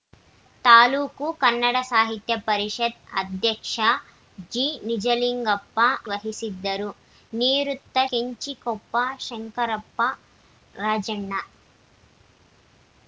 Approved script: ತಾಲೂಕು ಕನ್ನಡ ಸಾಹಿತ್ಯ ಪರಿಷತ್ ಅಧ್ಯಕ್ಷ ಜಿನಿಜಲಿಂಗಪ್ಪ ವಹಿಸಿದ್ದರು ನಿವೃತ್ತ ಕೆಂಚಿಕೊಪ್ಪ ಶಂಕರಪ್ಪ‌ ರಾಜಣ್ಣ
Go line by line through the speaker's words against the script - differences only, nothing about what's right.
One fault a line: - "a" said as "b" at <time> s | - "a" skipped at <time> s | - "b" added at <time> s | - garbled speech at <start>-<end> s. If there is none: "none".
none